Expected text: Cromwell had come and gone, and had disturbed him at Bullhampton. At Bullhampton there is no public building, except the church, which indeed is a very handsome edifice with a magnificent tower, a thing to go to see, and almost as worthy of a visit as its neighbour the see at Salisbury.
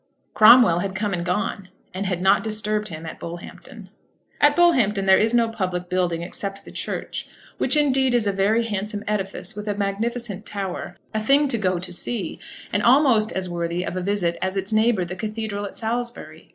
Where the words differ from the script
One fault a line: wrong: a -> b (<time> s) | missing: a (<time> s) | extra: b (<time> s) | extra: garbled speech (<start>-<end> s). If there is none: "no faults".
extra: not (2.2 s)
wrong: see -> cathedral (15.2 s)